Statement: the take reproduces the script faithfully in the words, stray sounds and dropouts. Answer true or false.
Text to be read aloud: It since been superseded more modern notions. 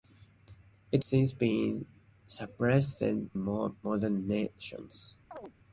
false